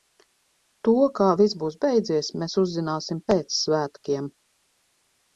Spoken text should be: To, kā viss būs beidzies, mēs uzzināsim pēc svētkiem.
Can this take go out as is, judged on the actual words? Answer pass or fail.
pass